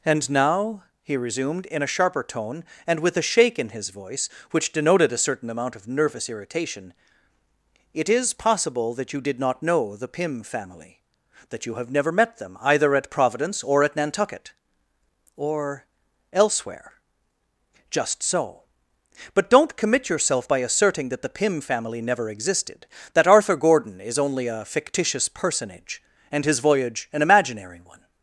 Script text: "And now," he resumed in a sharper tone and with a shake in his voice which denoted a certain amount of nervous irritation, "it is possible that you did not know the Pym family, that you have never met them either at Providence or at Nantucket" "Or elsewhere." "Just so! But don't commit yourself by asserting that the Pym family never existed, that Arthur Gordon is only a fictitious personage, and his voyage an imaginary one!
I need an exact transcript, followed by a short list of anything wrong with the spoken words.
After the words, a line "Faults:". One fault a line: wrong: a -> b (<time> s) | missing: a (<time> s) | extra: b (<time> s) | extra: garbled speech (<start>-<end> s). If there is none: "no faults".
"And now," he resumed in a sharper tone and with a shake in his voice which denoted a certain amount of nervous irritation, "it is possible that you did not know the Pym family, that you have never met them either at Providence or at Nantucket" "Or elsewhere." "Just so! But don't commit yourself by asserting that the Pym family never existed, that Arthur Gordon is only a fictitious personage, and his voyage an imaginary one!
Faults:
no faults